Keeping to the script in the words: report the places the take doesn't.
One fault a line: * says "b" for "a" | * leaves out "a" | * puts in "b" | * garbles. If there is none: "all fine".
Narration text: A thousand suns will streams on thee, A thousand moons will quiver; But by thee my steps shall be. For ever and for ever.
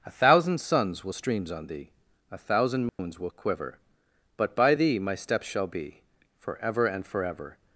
all fine